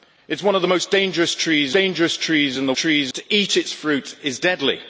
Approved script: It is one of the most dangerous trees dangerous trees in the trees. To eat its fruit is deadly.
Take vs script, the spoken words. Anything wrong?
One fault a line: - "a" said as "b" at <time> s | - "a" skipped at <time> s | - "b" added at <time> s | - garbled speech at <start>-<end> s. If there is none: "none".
none